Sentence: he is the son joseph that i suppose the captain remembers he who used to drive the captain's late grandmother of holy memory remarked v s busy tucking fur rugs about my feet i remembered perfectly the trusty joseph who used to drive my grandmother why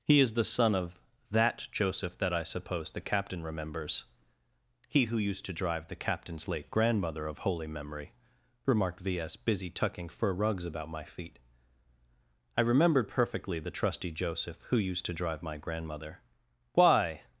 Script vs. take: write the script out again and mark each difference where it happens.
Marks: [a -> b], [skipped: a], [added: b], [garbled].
he is the son [added: of that] joseph that i suppose the captain remembers he who used to drive the captain's late grandmother of holy memory remarked v s busy tucking fur rugs about my feet i remembered perfectly the trusty joseph who used to drive my grandmother why